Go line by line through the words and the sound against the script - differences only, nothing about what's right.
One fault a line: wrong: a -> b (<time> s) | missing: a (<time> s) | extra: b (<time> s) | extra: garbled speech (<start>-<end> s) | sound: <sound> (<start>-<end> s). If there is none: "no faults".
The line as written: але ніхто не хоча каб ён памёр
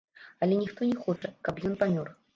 sound: dropout (1.2-1.2 s)